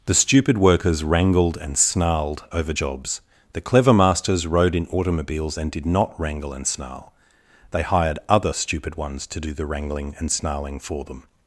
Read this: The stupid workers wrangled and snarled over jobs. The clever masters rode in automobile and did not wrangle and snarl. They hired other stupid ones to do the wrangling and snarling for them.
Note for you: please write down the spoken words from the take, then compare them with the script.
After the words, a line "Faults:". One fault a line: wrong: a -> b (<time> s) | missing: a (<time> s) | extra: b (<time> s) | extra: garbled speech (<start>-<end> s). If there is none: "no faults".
The stupid workers wrangled and snarled over jobs. The clever masters rode in automobiles and did not wrangle and snarl. They hired other stupid ones to do the wrangling and snarling for them.
Faults:
wrong: automobile -> automobiles (4.9 s)